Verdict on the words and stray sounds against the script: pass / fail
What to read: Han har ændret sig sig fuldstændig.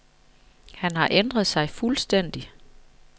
fail